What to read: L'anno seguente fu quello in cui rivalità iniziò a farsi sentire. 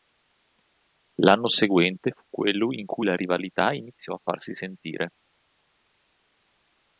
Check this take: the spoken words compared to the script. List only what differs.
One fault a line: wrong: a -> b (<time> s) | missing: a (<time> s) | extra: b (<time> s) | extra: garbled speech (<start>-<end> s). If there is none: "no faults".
extra: la (3.0 s)